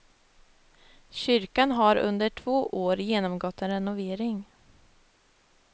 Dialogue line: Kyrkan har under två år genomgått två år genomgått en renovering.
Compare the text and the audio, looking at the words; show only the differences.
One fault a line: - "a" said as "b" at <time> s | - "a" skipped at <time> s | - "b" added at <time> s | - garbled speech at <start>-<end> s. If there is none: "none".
- "två år genomgått" skipped at 3.6 s